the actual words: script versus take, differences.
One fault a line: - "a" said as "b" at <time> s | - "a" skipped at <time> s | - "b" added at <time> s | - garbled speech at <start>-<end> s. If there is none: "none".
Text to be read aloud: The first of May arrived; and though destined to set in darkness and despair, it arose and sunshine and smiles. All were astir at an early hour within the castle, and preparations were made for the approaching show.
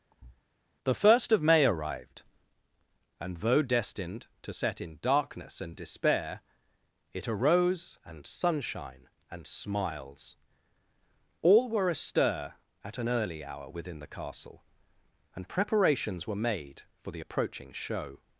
none